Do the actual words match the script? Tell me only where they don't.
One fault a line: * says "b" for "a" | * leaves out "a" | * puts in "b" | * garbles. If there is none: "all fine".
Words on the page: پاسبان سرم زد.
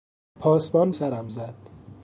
all fine